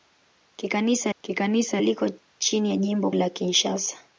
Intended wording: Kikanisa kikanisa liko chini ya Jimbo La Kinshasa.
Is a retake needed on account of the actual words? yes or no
no